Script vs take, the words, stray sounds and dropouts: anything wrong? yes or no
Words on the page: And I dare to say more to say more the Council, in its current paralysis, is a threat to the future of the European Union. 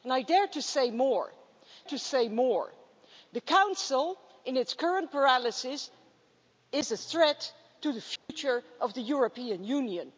yes